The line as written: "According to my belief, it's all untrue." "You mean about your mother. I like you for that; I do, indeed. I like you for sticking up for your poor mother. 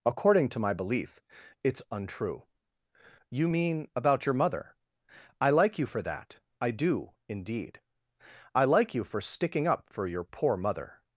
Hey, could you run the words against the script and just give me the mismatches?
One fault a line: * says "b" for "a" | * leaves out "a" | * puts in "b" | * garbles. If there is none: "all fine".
* leaves out "all"